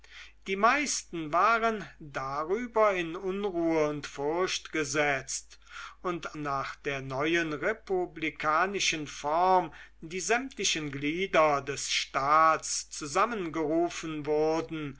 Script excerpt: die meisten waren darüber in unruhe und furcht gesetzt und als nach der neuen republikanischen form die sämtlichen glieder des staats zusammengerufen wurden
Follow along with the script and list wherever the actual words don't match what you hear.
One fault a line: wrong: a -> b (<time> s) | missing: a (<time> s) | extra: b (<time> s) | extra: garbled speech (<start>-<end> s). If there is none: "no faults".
missing: als (6.4 s)